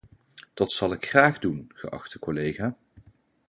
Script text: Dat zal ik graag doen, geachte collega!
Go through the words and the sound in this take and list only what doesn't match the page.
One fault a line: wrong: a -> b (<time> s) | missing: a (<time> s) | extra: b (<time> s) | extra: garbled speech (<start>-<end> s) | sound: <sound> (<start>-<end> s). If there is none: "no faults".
no faults